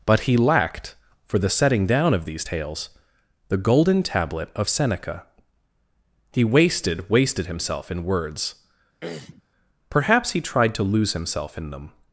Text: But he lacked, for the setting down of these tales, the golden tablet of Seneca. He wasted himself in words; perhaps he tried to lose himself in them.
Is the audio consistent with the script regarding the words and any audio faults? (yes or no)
no